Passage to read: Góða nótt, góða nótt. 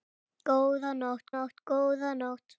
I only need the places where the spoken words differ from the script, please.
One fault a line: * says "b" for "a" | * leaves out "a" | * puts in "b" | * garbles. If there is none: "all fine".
* puts in "nótt"